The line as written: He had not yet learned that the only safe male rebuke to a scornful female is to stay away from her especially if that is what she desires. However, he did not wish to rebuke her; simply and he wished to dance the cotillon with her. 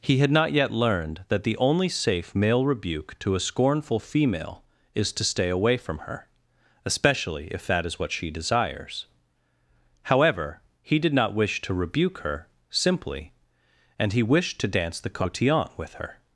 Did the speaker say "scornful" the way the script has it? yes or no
yes